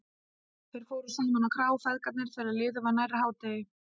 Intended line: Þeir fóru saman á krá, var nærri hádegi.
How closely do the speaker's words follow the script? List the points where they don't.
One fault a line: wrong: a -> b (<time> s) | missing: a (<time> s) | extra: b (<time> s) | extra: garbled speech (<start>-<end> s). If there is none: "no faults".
extra: feðgarnir þegar liðið (1.9 s)